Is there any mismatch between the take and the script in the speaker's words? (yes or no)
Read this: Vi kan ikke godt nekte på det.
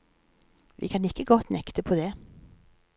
no